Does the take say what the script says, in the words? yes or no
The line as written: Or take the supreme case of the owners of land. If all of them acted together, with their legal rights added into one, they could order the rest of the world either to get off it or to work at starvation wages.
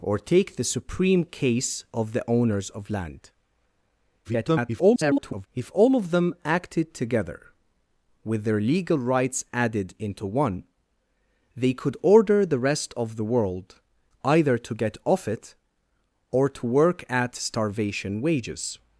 no